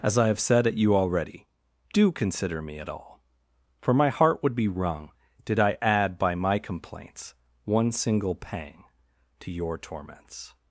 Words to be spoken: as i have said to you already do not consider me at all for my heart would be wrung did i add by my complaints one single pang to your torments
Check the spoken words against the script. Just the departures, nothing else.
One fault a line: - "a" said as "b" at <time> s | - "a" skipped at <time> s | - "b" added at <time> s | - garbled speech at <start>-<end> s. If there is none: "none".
- "to" said as "at" at 0.7 s
- "not" skipped at 2.1 s